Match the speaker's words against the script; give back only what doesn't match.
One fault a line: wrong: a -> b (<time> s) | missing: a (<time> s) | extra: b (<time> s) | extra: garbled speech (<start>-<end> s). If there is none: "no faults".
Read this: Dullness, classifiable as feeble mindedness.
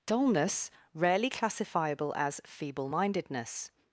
extra: rarely (0.9 s)